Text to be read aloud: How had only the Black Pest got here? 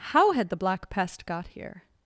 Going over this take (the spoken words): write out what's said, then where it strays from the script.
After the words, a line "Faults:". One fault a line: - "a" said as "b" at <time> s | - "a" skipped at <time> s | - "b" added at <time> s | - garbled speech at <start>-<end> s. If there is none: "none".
How had the Black Pest got here?
Faults:
- "only" skipped at 0.5 s